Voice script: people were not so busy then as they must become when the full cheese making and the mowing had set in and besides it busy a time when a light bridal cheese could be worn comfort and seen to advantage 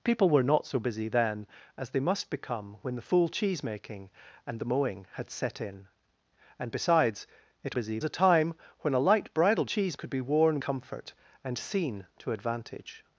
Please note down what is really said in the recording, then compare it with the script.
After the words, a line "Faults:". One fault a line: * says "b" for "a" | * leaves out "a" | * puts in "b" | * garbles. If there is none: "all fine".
people were not so busy then as they must become when the full cheese making and the mowing had set in and besides it busy a time when a light bridal cheese could be worn comfort and seen to advantage
Faults:
all fine